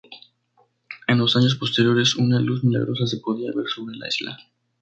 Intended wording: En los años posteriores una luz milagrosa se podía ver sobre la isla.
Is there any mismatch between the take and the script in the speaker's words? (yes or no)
no